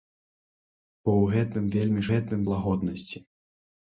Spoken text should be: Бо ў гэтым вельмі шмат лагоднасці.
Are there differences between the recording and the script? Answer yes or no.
yes